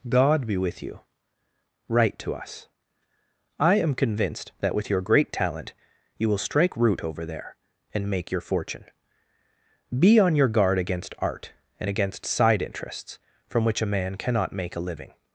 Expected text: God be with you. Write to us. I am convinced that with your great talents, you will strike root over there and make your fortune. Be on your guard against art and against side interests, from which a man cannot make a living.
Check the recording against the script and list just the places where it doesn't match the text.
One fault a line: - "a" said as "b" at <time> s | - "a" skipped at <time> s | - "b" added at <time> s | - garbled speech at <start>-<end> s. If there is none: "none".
- "talents" said as "talent" at 5.3 s